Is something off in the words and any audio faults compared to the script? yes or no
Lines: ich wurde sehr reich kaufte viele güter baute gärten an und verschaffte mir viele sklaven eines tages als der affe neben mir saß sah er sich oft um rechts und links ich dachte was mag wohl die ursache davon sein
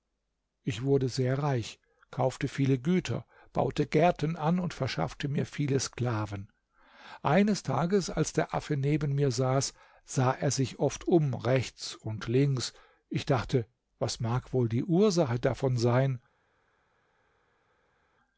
no